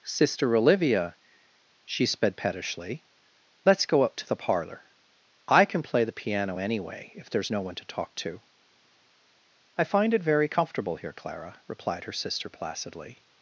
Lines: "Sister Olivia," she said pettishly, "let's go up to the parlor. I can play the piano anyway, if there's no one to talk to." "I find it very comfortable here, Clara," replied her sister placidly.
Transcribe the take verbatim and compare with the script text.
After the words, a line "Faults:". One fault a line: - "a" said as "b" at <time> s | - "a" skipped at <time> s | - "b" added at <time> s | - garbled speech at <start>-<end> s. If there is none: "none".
"Sister Olivia," she sped pettishly, "let's go up to the parlor. I can play the piano anyway, if there's no one to talk to." "I find it very comfortable here, Clara," replied her sister placidly.
Faults:
- "said" said as "sped" at 2.0 s